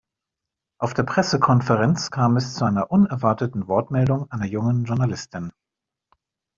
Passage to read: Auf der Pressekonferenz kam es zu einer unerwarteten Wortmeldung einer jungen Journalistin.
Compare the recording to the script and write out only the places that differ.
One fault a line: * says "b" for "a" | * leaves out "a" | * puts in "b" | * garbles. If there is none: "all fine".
all fine